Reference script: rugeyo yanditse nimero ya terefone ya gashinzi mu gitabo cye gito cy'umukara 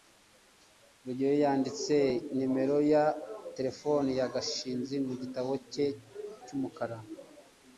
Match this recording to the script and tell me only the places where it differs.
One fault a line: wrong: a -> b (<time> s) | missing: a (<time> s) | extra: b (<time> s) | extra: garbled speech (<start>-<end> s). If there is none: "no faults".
missing: gito (5.8 s)